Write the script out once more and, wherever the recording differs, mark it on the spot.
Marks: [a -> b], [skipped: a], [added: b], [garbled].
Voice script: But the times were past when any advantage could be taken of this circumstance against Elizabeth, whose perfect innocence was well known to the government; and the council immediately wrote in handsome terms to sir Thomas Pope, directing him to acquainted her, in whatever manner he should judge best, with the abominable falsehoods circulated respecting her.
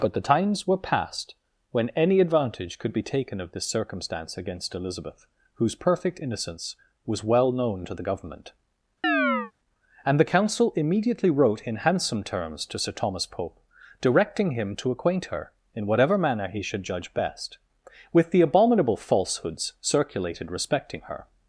But the times were past when any advantage could be taken of this circumstance against Elizabeth, whose perfect innocence was well known to the government; and the council immediately wrote in handsome terms to sir Thomas Pope, directing him to [acquainted -> acquaint] her, in whatever manner he should judge best, with the abominable falsehoods circulated respecting her.